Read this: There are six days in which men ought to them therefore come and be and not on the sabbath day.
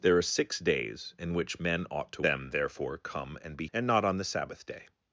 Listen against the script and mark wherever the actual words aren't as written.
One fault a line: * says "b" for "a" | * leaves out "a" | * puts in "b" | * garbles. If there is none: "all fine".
all fine